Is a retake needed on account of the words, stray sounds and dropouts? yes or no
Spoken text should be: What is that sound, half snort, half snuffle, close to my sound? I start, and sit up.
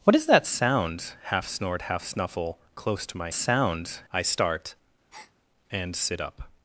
yes